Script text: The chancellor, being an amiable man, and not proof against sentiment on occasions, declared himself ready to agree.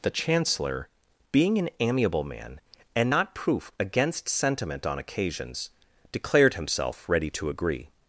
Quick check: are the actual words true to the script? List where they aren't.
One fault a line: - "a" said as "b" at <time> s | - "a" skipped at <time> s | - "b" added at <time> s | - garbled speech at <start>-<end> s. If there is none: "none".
none